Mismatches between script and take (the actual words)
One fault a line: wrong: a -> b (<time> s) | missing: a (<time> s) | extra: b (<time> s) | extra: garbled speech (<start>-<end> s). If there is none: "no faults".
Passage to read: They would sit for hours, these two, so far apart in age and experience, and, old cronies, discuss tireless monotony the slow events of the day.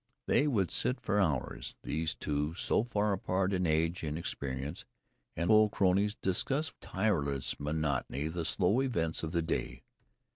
no faults